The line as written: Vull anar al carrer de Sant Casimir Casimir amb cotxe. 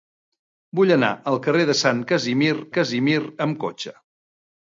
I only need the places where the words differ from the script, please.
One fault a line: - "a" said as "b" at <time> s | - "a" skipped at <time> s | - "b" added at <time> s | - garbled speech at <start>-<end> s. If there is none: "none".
none